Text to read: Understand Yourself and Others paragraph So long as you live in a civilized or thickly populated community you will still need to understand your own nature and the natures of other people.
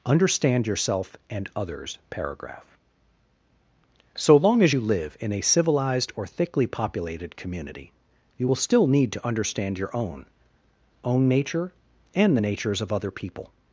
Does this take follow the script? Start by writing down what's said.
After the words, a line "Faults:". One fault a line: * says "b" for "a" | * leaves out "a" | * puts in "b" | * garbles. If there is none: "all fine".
Understand Yourself and Others paragraph So long as you live in a civilized or thickly populated community you will still need to understand your own own nature and the natures of other people.
Faults:
* puts in "own"